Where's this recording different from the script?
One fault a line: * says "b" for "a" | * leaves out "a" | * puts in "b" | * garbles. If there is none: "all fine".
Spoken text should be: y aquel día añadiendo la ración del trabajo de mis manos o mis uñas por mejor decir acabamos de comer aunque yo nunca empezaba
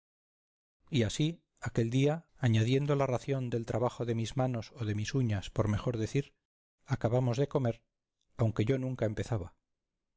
* puts in "así"
* puts in "de"